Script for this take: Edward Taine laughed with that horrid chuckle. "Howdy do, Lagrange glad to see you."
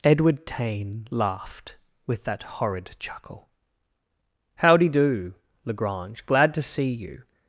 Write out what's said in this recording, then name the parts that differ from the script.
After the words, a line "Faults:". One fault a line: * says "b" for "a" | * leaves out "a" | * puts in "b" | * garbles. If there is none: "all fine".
Edward Taine laughed with that horrid chuckle. "Howdy do, Lagrange glad to see you."
Faults:
all fine